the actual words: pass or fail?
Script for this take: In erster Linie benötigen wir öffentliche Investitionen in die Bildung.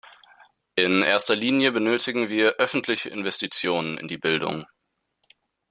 pass